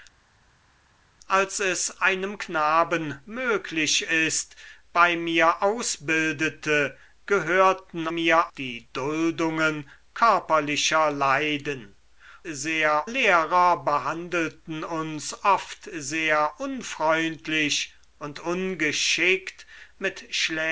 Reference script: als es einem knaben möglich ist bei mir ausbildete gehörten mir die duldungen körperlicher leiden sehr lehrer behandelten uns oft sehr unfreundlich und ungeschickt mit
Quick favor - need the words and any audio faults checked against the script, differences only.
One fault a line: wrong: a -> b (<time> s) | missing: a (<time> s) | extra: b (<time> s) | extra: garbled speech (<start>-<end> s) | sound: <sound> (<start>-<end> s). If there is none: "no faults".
no faults